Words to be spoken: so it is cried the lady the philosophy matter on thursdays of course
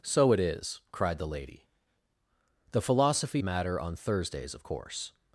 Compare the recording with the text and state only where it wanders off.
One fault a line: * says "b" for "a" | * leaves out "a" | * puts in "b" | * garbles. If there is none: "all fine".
all fine